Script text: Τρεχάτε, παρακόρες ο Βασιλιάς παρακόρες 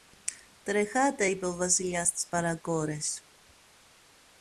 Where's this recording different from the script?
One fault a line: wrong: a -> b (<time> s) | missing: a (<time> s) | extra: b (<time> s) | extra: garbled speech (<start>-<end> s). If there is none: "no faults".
wrong: παρακόρες -> είπε (1.2 s)
extra: στις (2.1 s)